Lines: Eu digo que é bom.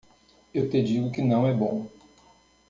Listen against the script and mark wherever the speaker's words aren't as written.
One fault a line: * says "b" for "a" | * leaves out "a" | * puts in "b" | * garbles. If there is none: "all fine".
* puts in "te"
* puts in "não"